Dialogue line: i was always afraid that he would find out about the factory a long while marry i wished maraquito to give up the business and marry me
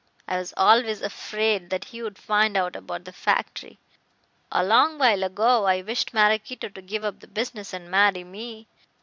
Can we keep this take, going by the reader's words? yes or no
no